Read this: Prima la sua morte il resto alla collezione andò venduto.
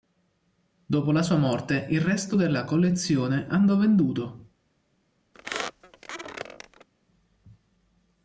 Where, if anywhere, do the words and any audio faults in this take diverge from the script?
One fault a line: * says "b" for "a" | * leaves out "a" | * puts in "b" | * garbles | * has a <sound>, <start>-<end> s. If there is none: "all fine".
* says "Dopo" for "Prima"
* says "della" for "alla"
* has a squeak, 5.3-6.9 s